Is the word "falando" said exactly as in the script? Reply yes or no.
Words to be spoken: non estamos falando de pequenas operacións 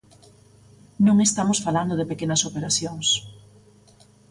yes